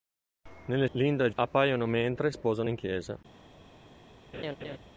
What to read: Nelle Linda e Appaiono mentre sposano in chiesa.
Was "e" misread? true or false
false